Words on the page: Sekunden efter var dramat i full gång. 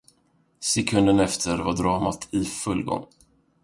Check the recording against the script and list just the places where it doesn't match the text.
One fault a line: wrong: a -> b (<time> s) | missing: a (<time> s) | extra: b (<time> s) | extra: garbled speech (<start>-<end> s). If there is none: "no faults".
no faults